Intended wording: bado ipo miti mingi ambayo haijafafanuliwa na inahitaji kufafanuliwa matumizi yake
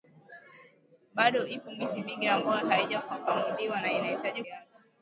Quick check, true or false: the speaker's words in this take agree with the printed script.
false